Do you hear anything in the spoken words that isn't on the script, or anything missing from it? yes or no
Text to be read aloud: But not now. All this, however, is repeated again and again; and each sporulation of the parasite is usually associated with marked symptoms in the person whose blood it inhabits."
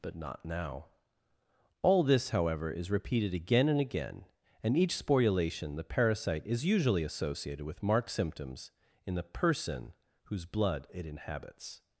yes